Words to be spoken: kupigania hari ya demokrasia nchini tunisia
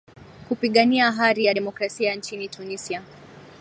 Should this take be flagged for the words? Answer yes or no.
no